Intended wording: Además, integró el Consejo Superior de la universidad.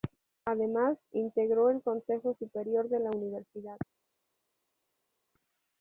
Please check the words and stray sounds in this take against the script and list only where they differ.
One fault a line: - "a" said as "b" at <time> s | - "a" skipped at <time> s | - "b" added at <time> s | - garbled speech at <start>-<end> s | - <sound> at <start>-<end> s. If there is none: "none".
none